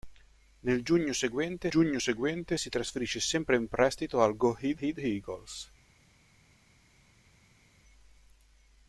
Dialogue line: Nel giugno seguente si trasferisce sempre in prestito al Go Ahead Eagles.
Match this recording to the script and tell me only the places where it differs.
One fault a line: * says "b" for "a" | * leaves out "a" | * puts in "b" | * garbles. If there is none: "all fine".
* puts in "giugno seguente"
* puts in "Ahead"